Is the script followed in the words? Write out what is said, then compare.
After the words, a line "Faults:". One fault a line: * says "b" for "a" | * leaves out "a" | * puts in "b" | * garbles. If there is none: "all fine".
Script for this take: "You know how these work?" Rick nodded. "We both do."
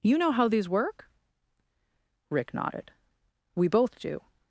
"You know how these work?" Rick nodded. "We both do."
Faults:
all fine